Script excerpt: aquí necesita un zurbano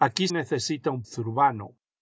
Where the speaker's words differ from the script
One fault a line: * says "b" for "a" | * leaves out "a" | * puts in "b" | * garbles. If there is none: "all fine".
all fine